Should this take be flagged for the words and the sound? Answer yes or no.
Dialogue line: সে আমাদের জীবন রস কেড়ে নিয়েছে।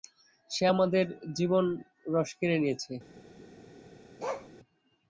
yes